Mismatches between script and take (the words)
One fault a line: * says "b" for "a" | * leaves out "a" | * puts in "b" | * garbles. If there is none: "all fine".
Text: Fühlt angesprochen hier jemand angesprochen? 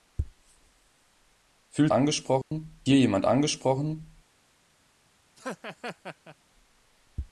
all fine